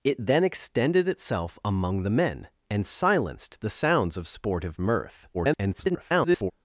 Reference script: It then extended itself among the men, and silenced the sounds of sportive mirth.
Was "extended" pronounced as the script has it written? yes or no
yes